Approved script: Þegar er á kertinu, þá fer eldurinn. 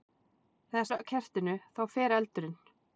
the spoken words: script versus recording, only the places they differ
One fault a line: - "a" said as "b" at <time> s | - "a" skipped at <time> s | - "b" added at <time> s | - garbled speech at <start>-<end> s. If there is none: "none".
none